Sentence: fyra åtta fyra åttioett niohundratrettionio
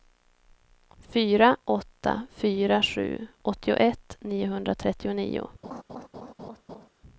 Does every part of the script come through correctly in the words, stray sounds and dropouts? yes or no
no